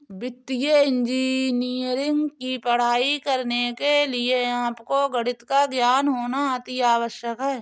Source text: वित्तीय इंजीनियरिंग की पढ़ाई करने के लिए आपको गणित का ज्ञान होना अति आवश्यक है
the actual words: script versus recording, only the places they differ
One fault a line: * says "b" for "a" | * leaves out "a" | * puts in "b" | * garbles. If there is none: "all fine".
all fine